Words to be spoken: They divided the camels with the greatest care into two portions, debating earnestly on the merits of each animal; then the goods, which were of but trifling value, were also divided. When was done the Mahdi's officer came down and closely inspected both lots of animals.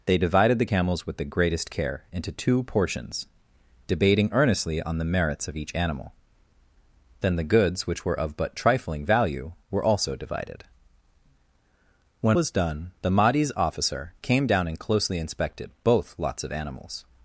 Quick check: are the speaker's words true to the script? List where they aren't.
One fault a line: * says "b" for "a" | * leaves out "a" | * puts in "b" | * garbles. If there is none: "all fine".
all fine